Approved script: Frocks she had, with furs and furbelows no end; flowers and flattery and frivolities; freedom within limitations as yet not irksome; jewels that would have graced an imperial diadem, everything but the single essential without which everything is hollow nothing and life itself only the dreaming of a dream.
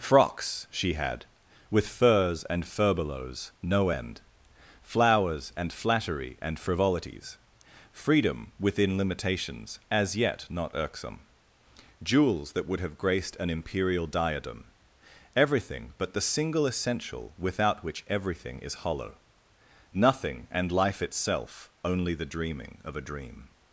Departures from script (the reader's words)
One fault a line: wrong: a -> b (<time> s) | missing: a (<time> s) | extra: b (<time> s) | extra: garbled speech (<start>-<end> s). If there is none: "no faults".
no faults